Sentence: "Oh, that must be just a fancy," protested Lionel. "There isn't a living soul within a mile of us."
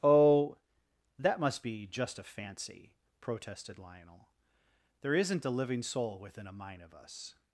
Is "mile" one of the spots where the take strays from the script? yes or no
yes